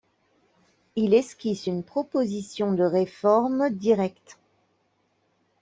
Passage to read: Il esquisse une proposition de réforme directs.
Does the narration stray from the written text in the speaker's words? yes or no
no